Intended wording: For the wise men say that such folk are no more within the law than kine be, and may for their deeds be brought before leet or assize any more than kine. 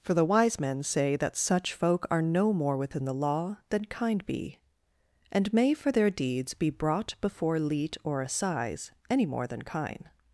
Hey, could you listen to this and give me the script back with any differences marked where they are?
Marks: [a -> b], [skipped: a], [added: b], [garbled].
For the wise men say that such folk are no more within the law than kine be, and may for their deeds be brought before leet or assize any more than kine.